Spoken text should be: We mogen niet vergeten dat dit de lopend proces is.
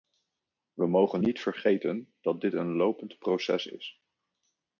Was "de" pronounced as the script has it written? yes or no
no